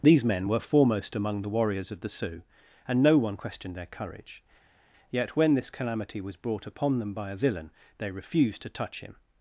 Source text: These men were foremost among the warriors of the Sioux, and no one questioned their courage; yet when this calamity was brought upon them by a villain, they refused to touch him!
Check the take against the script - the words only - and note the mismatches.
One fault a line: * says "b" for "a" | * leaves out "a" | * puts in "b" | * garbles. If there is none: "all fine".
all fine